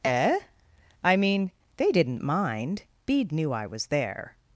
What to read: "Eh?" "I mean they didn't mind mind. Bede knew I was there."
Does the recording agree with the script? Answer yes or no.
no